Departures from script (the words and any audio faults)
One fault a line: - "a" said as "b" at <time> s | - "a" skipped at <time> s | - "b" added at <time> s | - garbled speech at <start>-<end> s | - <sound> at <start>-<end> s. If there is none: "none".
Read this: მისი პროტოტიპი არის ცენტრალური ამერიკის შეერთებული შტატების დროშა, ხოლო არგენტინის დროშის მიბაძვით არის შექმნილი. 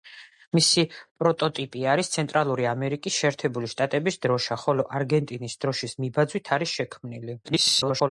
- garbled speech at 7.4-8.1 s